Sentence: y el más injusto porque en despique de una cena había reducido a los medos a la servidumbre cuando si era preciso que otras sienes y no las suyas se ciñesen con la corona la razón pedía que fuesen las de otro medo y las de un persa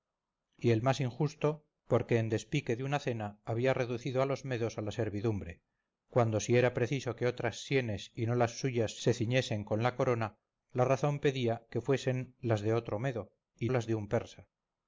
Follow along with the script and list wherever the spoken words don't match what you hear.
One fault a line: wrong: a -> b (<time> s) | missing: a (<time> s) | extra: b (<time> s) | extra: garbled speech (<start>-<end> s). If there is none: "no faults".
no faults